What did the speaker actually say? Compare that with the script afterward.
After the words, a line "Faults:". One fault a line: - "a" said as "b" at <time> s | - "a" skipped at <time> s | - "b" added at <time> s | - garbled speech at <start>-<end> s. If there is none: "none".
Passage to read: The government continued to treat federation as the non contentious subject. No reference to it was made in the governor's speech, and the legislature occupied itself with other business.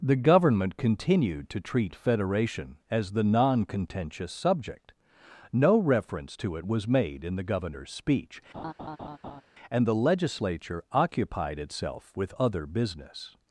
The government continued to treat federation as the non contentious subject. No reference to it was made in the governor's speech, and the legislature occupied itself with other business.
Faults:
none